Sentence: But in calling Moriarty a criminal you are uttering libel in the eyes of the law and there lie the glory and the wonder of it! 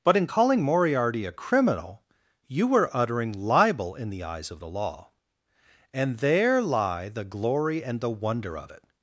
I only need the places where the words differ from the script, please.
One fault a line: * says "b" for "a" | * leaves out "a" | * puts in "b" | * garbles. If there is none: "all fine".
* says "were" for "are"